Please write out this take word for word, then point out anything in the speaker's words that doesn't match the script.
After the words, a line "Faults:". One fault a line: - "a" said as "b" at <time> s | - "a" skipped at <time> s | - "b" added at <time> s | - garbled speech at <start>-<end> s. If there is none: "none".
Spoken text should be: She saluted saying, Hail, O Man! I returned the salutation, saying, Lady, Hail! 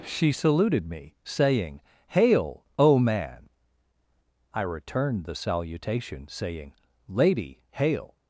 She saluted me, saying, Hail, O Man! I returned the salutation, saying, Lady, Hail!
Faults:
- "me" added at 0.9 s